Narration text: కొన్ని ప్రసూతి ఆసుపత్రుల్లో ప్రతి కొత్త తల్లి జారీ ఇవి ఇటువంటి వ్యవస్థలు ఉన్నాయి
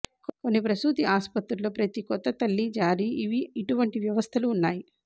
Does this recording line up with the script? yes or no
yes